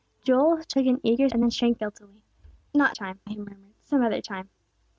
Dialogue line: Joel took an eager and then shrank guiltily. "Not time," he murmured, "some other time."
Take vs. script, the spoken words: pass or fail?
pass